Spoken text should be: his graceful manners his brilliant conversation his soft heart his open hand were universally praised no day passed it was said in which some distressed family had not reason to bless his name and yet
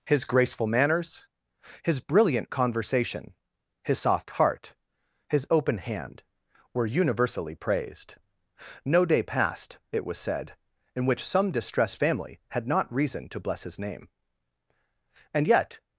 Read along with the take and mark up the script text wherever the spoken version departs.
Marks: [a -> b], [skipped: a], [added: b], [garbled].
his graceful manners his brilliant conversation his soft heart his open hand were universally praised no day passed it was said in which some distressed family had not reason to bless his name and yet